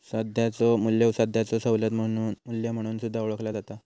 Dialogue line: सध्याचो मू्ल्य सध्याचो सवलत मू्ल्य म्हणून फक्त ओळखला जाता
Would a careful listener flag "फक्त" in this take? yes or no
yes